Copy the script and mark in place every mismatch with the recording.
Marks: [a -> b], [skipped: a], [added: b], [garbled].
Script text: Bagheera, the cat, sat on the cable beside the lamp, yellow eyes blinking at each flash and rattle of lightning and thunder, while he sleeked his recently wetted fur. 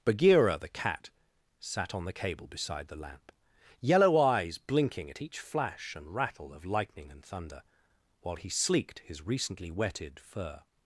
Bagheera, the cat, sat on the cable beside the lamp, yellow eyes blinking at each flash and rattle of lightning and thunder, while he sleeked his recently wetted fur.